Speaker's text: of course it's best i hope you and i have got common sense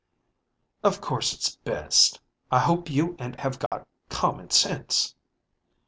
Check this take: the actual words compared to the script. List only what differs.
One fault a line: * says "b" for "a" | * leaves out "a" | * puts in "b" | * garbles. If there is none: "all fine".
* leaves out "i"